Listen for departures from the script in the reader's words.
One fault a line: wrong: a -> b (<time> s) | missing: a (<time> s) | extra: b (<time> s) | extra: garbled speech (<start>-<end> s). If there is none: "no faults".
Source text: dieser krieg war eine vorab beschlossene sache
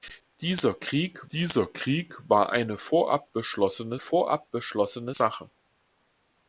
extra: dieser krieg (1.3 s)
extra: vorab beschlossene (4.0 s)